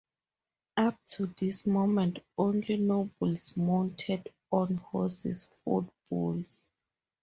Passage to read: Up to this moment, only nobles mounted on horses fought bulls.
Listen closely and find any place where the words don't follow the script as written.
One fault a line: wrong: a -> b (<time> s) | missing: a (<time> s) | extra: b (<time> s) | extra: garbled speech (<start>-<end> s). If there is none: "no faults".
no faults